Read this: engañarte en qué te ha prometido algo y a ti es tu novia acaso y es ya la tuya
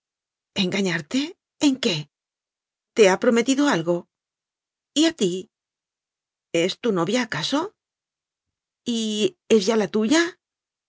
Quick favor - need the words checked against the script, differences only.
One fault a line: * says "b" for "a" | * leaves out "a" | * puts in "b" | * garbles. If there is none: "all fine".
all fine